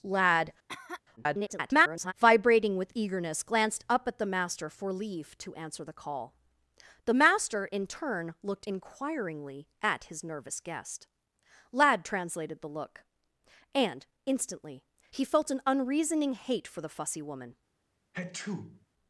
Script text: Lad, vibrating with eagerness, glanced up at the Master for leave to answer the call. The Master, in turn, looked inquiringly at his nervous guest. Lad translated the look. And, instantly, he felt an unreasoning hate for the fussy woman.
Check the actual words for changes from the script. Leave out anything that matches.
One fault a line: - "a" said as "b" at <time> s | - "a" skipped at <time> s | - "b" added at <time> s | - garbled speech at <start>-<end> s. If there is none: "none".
- garbled speech at 1.2-2.1 s